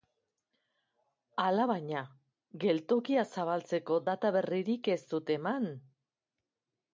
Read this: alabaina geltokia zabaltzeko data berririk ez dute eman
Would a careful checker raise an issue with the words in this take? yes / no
no